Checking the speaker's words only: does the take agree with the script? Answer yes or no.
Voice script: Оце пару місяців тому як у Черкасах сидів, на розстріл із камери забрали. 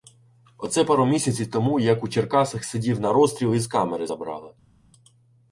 yes